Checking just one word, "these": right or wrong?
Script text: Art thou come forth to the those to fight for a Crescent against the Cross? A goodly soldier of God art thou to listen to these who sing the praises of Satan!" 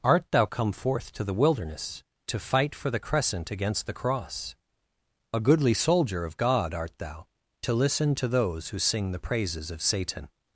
wrong